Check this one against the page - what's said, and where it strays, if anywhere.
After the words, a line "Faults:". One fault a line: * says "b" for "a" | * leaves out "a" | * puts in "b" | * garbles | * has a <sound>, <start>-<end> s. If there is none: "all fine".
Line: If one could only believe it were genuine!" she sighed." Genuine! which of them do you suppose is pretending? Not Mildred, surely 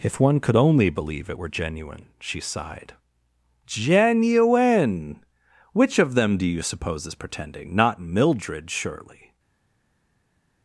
If one could only believe it were genuine!" she sighed." Genuine! which of them do you suppose is pretending? Not Mildred, surely
Faults:
all fine